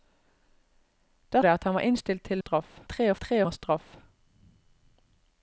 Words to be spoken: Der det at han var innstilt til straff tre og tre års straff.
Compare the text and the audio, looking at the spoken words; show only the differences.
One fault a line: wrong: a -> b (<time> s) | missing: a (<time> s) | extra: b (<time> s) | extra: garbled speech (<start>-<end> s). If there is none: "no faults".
no faults